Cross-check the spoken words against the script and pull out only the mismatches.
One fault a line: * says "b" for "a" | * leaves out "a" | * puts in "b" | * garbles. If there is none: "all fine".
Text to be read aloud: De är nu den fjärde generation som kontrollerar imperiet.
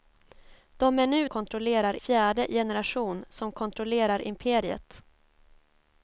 * says "kontrollerar" for "den"